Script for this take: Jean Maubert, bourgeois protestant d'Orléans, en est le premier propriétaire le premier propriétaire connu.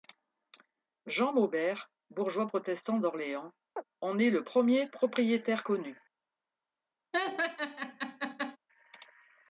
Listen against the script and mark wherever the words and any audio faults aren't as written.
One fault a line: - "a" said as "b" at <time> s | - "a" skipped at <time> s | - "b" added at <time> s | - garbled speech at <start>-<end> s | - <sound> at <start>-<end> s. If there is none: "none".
- chirp at 3.8-3.8 s
- "le premier propriétaire" skipped at 5.6 s
- laugh at 7.1-8.6 s